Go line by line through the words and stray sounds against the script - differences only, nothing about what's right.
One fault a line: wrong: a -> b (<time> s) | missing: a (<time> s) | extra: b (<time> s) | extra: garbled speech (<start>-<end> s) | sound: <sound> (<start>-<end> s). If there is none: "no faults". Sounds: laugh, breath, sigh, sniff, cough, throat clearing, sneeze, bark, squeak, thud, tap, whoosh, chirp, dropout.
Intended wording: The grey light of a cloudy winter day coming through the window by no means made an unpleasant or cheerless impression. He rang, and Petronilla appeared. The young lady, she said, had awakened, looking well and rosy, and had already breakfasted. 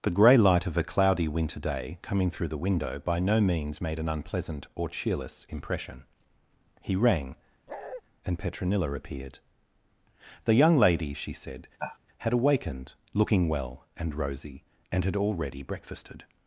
sound: bark (7.7-8.0 s)
sound: sigh (11.8-12.0 s)